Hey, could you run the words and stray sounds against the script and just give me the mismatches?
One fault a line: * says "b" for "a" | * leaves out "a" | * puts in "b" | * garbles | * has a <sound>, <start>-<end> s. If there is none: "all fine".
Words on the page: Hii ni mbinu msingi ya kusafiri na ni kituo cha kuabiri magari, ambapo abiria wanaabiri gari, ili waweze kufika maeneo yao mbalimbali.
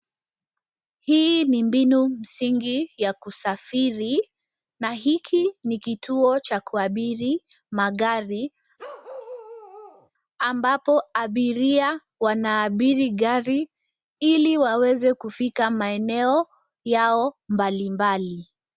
* puts in "hiki"
* has a bark, 8.8-10.1 s